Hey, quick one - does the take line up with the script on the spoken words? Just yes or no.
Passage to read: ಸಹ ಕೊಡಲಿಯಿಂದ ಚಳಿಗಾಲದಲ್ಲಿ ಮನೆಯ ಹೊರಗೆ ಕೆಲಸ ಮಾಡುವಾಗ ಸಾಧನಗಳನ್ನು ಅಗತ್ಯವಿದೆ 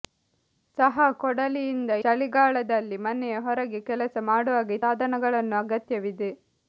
yes